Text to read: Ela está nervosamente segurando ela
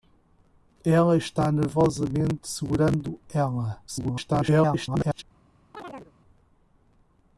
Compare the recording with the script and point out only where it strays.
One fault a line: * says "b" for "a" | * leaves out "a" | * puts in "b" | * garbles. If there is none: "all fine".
* garbles